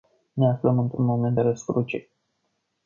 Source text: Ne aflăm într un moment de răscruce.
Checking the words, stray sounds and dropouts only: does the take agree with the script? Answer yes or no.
yes